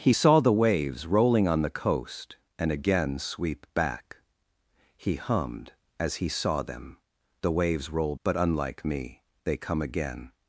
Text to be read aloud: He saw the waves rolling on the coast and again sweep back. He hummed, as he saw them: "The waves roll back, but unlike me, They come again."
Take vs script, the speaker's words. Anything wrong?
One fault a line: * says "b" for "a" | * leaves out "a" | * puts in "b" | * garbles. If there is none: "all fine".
* leaves out "back"